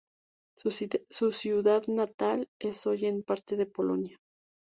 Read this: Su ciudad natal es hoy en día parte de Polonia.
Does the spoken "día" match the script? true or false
false